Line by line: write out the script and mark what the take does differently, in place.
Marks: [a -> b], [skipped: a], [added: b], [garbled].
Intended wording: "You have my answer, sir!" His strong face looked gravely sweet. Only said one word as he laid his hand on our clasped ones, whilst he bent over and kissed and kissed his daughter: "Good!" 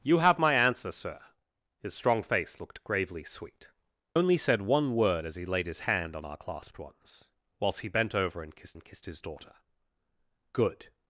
"You have my answer, sir!" His strong face looked gravely sweet. Only said one word as he laid his hand on our clasped ones, whilst he bent over and kissed and kissed his daughter: "Good!"